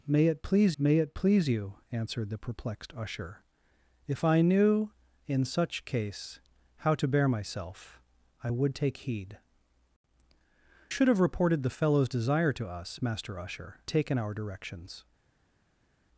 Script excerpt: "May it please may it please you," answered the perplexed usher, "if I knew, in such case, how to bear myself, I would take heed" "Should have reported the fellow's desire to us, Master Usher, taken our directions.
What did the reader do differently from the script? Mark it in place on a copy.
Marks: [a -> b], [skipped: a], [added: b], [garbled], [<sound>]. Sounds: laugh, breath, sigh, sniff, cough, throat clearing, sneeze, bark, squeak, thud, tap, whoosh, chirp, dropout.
"May it please may it please you," answered the perplexed usher, "if I knew, in such case, how to bear myself, I would take heed" "Should have reported the fellow's desire to us, Master Usher, taken our directions.